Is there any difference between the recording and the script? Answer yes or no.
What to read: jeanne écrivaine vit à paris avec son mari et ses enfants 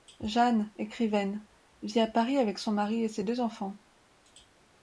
yes